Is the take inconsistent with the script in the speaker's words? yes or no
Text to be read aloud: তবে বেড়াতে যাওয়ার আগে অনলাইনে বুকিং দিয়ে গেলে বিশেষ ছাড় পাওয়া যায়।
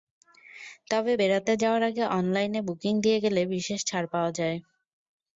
no